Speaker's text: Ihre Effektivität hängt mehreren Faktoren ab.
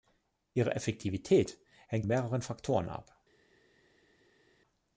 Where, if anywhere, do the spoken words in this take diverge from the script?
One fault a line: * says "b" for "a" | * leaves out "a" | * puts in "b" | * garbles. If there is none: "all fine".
all fine